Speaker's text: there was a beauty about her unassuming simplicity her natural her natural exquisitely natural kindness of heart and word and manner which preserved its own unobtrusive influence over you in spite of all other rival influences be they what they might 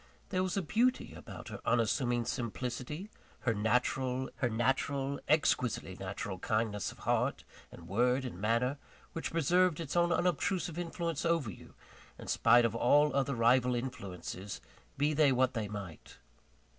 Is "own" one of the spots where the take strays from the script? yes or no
no